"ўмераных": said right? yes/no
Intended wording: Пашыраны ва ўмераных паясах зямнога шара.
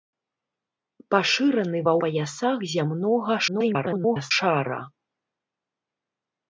no